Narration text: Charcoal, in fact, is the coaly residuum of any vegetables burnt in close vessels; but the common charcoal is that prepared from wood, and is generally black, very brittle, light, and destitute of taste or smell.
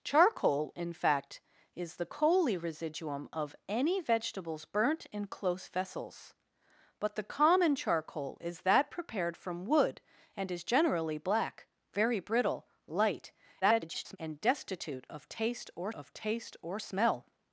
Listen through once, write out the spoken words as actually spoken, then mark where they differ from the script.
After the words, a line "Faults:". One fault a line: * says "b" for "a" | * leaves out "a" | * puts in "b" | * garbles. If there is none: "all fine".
Charcoal, in fact, is the coaly residuum of any vegetables burnt in close vessels; but the common charcoal is that prepared from wood, and is generally black, very brittle, light, [garbled] and destitute of taste or of taste or smell.
Faults:
* garbles
* puts in "of taste or"